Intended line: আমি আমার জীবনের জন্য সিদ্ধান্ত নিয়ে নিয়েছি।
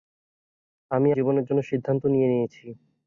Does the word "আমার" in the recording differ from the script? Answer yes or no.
yes